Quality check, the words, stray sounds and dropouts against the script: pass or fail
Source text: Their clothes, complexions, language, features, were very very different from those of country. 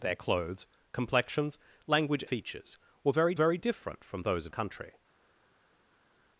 pass